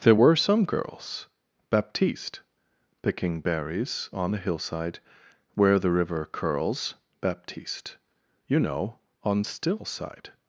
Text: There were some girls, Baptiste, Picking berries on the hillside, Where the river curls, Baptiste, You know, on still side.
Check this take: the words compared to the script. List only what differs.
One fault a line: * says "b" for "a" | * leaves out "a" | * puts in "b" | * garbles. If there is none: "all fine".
all fine